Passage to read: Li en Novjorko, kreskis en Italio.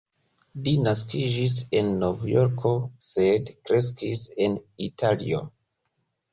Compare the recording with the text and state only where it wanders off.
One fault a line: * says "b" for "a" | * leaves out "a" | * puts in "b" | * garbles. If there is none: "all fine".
* puts in "naskiĝis"
* puts in "sed"